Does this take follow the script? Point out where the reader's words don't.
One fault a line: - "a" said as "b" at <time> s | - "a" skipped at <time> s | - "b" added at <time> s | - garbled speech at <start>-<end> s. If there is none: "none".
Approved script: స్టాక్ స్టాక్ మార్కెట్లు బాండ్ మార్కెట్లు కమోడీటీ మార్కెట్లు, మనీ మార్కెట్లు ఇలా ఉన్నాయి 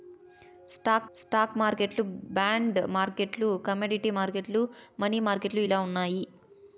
none